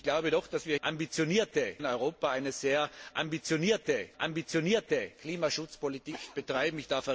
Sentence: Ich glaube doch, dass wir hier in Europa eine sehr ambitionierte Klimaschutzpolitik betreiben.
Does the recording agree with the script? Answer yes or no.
no